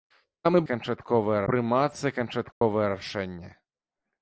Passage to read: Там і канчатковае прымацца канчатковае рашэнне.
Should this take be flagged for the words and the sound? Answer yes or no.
yes